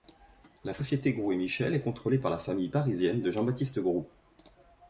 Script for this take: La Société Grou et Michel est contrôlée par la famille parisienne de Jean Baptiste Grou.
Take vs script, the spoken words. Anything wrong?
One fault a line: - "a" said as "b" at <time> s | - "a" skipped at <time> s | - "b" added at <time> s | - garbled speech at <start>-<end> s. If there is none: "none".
none